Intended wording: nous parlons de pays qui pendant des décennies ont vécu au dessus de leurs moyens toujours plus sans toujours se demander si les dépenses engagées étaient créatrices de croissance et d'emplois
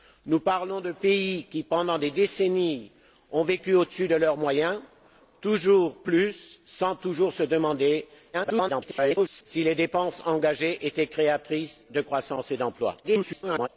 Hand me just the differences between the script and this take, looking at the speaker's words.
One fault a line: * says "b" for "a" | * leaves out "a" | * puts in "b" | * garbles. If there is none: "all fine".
* garbles
* garbles